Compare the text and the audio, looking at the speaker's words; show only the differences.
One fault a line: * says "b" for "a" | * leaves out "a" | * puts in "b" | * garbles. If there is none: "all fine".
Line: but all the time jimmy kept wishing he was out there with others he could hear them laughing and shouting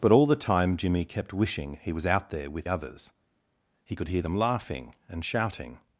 all fine